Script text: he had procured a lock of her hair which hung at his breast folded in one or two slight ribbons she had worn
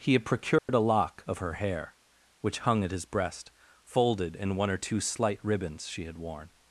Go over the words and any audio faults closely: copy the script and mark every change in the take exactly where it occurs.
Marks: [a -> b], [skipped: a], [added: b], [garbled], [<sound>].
he had procured [dropout] a lock of her hair which hung at his breast folded in one or two slight ribbons she had worn